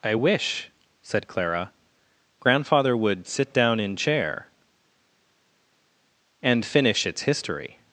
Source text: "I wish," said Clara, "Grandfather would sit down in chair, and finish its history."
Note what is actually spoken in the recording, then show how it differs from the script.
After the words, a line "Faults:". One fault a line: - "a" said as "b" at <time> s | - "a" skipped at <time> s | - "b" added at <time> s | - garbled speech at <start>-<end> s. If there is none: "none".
"I wish," said Clara, "Grandfather would sit down in chair, and finish its history."
Faults:
none